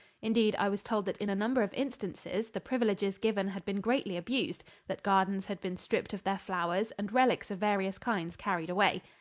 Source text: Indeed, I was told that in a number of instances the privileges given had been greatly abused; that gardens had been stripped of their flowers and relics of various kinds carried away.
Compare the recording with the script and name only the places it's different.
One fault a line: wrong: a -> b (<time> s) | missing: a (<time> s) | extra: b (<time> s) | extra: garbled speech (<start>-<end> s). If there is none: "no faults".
no faults